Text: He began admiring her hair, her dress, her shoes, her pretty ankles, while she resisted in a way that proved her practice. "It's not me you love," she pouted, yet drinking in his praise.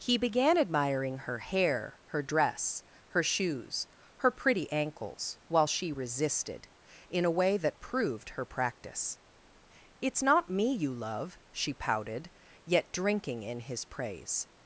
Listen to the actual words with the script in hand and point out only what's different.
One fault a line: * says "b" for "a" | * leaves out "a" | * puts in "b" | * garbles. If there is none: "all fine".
all fine